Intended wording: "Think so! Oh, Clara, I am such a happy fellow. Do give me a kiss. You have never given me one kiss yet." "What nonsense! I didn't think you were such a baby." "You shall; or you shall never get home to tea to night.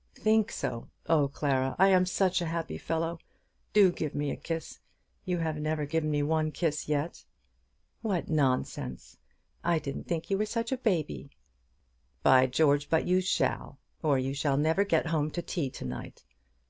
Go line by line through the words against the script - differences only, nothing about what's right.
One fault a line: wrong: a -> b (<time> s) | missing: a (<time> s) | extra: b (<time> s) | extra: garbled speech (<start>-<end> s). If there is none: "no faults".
extra: By George but (12.2 s)